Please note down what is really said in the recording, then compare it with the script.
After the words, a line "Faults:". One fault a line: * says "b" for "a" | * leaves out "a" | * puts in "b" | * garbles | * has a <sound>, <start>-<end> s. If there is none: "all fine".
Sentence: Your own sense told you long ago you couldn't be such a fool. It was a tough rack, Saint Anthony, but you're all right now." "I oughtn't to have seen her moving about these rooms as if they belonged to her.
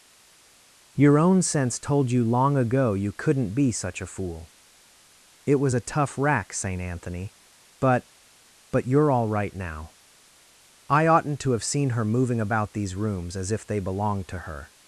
Your own sense told you long ago you couldn't be such a fool. It was a tough rack, Saint Anthony, but but you're all right now." "I oughtn't to have seen her moving about these rooms as if they belonged to her.
Faults:
* puts in "but"